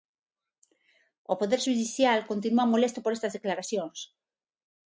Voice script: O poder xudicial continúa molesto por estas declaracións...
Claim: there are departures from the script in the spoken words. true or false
false